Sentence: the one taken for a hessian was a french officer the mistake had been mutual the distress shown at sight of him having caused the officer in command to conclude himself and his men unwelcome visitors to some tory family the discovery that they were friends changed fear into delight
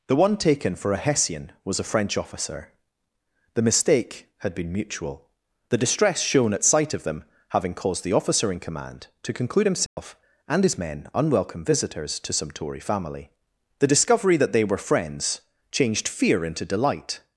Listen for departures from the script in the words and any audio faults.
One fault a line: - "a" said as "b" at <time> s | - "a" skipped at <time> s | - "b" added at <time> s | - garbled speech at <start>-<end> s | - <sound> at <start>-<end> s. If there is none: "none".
- "him" said as "them" at 7.0 s
- dropout at 9.9-10.0 s